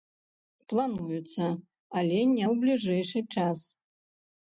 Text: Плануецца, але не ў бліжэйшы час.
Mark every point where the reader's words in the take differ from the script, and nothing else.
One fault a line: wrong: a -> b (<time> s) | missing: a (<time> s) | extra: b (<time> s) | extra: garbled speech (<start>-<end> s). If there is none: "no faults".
no faults